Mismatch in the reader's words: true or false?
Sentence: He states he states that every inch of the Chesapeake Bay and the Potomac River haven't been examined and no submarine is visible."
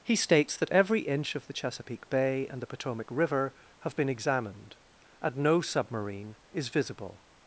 true